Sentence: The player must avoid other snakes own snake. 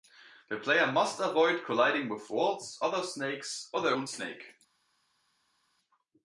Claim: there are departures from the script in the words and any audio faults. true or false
true